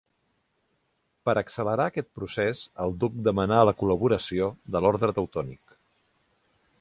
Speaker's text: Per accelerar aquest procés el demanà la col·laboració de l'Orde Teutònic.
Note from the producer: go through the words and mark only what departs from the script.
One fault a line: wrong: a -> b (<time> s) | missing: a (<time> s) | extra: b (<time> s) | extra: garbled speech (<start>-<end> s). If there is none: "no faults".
extra: duc (3.0 s)